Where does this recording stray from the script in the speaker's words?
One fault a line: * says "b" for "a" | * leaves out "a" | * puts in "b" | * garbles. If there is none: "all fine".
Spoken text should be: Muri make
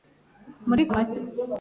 all fine